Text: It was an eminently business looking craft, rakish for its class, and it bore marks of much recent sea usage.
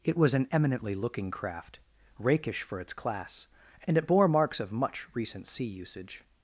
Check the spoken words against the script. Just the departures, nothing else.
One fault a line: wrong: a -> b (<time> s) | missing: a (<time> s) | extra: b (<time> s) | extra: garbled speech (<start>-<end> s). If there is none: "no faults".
missing: business (1.0 s)